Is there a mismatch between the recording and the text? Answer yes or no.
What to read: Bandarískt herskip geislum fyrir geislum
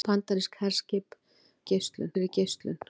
no